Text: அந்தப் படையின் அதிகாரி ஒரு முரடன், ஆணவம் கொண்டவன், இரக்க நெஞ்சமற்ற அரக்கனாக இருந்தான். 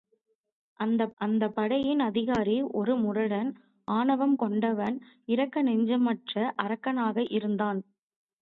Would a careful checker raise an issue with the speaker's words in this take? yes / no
yes